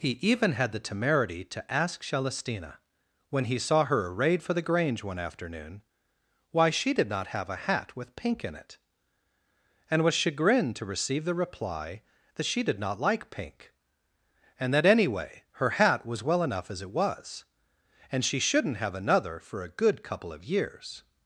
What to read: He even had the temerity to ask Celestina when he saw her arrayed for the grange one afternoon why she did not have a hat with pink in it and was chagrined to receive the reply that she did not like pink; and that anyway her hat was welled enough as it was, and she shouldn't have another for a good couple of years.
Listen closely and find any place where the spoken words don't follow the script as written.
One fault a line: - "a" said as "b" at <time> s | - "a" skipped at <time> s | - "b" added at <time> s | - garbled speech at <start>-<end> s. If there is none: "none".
- "welled" said as "well" at 16.2 s